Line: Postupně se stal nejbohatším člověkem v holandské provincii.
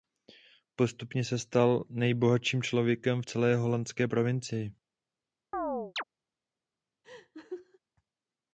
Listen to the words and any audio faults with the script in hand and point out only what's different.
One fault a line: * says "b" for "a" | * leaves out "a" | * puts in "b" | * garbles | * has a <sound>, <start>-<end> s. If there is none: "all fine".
* puts in "celé"
* has a chirp, 5.5-6.0 s
* has a laugh, 7.0-7.8 s